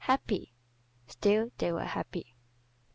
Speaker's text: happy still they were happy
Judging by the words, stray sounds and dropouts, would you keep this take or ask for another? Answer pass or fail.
pass